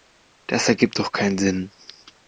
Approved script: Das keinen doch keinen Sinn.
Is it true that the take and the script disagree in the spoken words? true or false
true